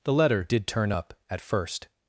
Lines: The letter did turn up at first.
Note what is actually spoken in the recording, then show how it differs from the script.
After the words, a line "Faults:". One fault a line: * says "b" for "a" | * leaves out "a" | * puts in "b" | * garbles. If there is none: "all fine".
The letter did turn up at first.
Faults:
all fine